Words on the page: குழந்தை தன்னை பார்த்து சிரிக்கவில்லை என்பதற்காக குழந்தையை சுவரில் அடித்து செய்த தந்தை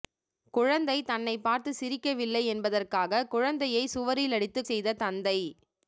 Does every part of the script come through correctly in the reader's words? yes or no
yes